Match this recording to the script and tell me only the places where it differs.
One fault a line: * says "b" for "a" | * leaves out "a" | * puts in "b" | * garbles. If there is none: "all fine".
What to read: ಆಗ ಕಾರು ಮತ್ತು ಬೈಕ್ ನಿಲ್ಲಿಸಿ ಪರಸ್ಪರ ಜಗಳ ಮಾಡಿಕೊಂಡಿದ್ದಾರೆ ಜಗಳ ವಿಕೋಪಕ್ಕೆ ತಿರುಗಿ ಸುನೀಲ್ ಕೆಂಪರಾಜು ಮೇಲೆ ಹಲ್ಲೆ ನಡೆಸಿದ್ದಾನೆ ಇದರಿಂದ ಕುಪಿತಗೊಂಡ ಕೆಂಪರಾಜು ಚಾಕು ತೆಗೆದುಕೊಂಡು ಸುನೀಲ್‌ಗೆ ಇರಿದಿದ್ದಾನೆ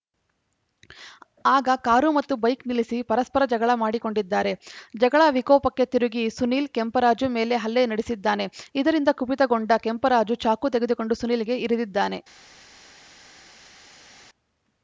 all fine